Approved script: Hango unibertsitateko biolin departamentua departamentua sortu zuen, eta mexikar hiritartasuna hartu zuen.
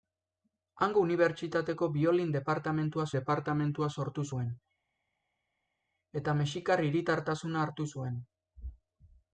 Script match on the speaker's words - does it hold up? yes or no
yes